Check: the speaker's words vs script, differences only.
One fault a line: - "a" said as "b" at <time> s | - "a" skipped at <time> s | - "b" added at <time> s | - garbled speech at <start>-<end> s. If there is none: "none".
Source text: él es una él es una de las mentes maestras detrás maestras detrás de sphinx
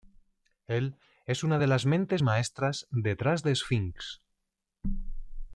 - "él es una" skipped at 1.6 s
- "maestras detrás" skipped at 3.4 s